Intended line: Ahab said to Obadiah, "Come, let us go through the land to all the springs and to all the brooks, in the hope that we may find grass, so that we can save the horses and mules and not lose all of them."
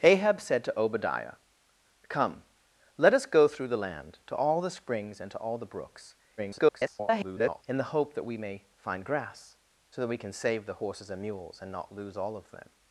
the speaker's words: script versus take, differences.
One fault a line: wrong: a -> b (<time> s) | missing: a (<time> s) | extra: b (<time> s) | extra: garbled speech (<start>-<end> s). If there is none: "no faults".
extra: garbled speech (6.4-7.6 s)